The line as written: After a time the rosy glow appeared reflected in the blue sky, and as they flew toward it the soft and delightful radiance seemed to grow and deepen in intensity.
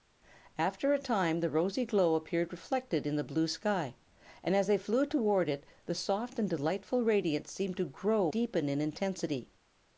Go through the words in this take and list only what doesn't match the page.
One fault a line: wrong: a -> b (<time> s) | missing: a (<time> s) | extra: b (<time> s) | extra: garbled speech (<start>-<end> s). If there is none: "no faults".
missing: and (8.3 s)